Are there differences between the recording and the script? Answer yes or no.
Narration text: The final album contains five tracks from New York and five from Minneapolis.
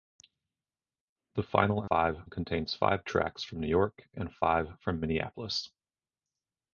yes